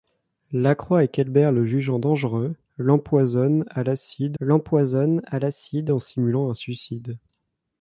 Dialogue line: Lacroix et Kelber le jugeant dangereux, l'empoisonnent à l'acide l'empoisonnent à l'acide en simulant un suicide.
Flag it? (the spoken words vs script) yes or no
no